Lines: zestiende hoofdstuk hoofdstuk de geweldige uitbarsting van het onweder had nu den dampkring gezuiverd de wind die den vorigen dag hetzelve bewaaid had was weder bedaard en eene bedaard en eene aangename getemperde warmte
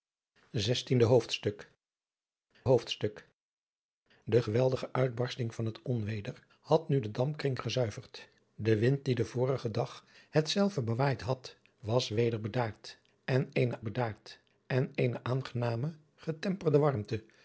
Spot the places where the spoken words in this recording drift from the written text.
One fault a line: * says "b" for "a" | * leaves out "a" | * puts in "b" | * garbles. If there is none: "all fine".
all fine